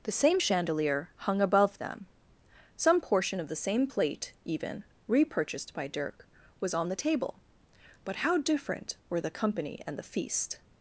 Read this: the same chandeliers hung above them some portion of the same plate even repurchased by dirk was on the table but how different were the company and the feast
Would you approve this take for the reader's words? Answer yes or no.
no